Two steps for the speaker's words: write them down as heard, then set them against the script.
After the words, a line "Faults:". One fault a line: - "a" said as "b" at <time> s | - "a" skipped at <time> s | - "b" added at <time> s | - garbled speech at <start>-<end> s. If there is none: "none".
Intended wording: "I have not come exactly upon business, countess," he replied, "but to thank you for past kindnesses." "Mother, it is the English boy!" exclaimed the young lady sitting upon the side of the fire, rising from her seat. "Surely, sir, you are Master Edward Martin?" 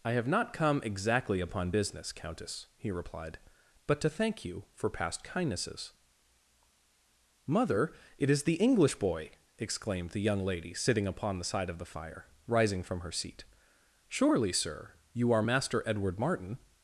"I have not come exactly upon business, countess," he replied, "but to thank you for past kindnesses." "Mother, it is the English boy!" exclaimed the young lady sitting upon the side of the fire, rising from her seat. "Surely, sir, you are Master Edward Martin?"
Faults:
none